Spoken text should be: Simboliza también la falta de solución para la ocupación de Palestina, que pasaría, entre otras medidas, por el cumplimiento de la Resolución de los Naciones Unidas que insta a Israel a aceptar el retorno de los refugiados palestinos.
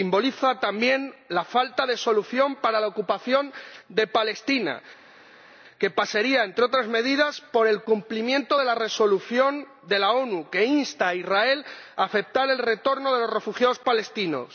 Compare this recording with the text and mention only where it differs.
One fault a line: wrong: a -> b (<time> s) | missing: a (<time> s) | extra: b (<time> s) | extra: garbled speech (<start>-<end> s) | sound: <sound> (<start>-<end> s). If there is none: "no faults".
wrong: los -> las (10.0 s)